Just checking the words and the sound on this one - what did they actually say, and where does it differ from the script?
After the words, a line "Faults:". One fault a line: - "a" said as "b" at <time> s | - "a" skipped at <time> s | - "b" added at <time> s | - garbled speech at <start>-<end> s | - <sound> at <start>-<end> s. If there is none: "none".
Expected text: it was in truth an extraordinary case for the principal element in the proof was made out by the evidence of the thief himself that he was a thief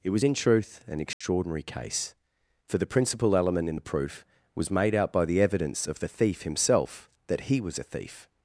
it was in truth an extraordinary case for the principal element in the proof was made out by the evidence of the thief himself that he was a thief
Faults:
- dropout at 1.1-1.2 s